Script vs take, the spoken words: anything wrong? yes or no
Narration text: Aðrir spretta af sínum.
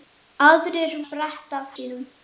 no